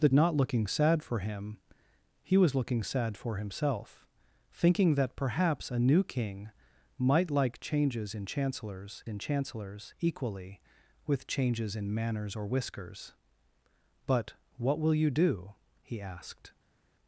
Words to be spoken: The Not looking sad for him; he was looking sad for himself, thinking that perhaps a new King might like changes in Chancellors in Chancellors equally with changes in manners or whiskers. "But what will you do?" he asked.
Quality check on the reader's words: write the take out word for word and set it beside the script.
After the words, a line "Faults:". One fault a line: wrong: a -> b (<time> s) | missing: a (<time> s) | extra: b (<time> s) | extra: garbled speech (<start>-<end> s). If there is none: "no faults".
The Not looking sad for him; he was looking sad for himself, thinking that perhaps a new King might like changes in Chancellors in Chancellors equally with changes in manners or whiskers. "But what will you do?" he asked.
Faults:
no faults